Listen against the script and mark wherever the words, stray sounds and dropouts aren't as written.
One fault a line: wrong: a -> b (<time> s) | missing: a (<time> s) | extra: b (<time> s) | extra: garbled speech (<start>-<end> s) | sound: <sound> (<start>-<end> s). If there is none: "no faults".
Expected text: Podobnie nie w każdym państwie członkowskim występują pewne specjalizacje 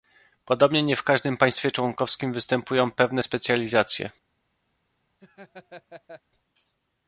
sound: laugh (5.2-6.2 s)